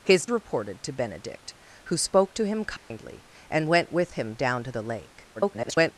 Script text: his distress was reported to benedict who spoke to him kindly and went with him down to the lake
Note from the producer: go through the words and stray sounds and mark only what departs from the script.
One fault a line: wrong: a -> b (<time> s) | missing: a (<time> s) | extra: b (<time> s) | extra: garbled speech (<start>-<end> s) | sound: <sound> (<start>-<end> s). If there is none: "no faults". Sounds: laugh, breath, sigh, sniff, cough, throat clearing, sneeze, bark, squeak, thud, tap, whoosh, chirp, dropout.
missing: distress was (0.2 s)
sound: dropout (2.8-2.9 s)
extra: garbled speech (5.4-5.9 s)